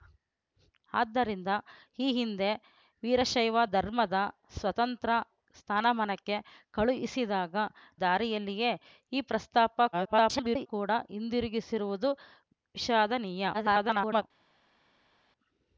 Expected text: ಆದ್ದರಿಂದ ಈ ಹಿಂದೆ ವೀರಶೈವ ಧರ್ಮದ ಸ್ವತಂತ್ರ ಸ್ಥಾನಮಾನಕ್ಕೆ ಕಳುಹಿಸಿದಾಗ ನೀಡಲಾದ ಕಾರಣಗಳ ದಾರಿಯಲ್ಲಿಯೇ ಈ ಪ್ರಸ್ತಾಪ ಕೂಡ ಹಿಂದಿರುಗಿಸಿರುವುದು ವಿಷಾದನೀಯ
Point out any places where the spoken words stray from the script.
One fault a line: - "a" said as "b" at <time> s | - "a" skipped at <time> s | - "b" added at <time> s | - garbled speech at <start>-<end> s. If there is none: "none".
- "ನೀಡಲಾದ ಕಾರಣಗಳ" skipped at 7.6 s
- garbled speech at 9.9-10.7 s
- garbled speech at 13.5-14.2 s